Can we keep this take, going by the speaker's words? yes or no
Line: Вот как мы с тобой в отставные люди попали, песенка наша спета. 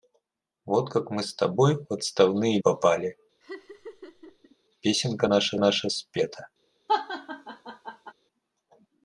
no